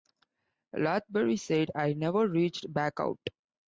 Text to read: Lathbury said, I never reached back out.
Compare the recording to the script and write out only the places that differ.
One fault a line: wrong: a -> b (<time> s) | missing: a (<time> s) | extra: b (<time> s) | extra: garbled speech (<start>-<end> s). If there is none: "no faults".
no faults